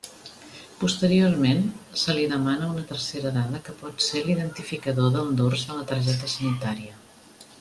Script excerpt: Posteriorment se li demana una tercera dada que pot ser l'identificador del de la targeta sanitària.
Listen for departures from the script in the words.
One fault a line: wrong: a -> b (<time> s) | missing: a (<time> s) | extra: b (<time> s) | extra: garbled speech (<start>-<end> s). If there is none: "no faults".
extra: dors (5.4 s)